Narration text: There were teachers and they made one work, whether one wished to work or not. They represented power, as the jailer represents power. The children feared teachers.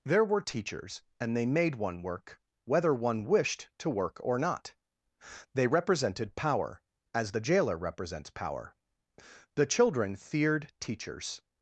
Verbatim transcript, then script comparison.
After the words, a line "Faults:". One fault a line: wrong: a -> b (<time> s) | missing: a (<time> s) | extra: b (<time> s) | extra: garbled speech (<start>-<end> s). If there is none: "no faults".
There were teachers and they made one work, whether one wished to work or not. They represented power, as the jailer represents power. The children feared teachers.
Faults:
no faults